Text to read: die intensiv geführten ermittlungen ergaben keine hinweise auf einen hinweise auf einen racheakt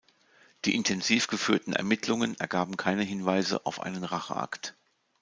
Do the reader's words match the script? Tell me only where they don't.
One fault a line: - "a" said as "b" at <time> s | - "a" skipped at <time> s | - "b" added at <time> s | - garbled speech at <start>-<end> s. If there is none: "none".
- "hinweise auf einen" skipped at 4.0 s